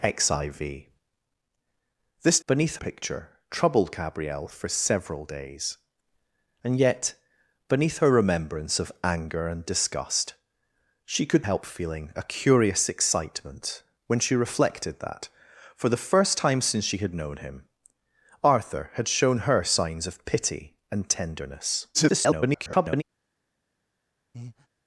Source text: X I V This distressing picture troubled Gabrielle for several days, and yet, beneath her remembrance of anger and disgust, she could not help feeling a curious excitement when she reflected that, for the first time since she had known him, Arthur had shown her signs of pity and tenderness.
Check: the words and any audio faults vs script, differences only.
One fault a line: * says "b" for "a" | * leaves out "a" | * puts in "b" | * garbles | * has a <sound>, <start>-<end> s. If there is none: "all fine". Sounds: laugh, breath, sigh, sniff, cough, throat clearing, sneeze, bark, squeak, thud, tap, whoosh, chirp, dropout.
* says "beneath" for "distressing"
* leaves out "not"
* garbles
* has a breath, 24.3-24.7 s